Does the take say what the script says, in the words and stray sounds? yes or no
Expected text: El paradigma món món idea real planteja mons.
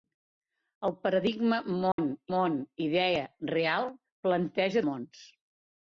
no